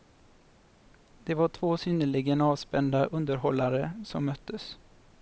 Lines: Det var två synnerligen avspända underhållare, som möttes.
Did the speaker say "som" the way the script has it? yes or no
yes